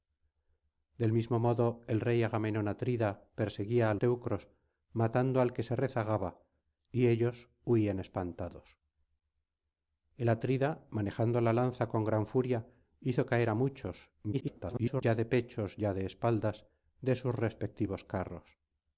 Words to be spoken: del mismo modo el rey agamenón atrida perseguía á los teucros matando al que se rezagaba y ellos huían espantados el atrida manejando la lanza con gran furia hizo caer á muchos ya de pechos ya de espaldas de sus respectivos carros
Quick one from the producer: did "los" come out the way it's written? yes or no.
no